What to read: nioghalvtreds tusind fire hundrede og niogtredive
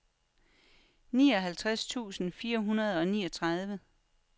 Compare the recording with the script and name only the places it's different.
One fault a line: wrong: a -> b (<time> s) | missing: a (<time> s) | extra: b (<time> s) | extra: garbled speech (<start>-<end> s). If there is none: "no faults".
no faults